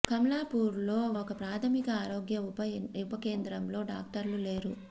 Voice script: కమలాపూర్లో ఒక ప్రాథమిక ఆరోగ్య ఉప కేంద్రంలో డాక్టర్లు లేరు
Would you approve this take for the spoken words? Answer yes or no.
yes